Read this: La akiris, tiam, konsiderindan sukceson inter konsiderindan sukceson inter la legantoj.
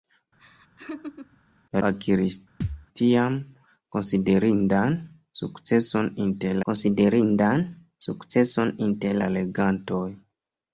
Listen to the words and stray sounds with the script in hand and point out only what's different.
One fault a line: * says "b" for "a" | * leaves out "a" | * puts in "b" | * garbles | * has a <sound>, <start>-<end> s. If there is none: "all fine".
* has a laugh, 0.4-1.4 s
* has a thud, 2.6-2.9 s